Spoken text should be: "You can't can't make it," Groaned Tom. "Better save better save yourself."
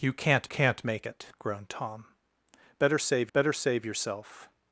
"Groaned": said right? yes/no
yes